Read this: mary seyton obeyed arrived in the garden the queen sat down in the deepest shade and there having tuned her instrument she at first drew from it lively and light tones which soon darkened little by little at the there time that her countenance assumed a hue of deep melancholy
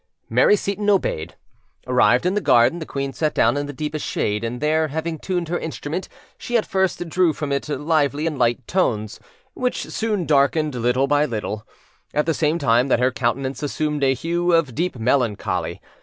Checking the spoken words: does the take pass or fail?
fail